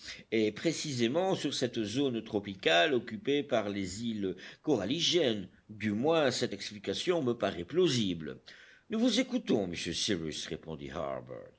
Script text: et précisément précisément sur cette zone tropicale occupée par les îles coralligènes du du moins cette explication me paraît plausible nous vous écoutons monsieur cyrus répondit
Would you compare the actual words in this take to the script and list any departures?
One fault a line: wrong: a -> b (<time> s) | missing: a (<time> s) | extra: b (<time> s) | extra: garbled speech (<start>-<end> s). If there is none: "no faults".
missing: précisément (1.4 s)
missing: du (5.9 s)